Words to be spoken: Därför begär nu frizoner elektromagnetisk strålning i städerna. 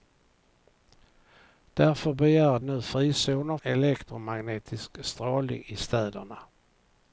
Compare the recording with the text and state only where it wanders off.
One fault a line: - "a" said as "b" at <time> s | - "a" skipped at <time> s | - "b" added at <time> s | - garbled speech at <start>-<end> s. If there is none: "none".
none